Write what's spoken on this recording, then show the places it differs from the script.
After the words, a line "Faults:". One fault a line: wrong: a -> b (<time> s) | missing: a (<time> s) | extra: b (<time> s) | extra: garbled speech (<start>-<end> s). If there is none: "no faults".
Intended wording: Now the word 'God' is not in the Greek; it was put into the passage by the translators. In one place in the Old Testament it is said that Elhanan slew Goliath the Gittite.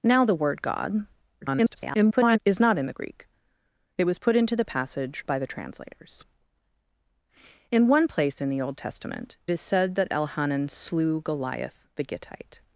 Now the word 'God' [garbled] is not in the Greek; it was put into the passage by the translators. In one place in the Old Testament is said that Elhanan slew Goliath the Gittite.
Faults:
extra: garbled speech (1.4-2.4 s)
missing: it (9.4 s)